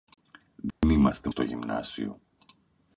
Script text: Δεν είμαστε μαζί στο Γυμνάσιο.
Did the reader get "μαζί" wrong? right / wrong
wrong